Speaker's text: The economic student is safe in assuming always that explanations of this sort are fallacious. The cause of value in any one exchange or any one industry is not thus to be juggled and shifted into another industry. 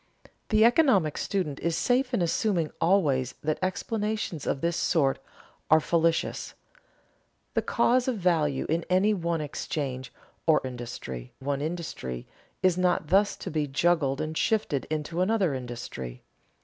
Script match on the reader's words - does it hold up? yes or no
no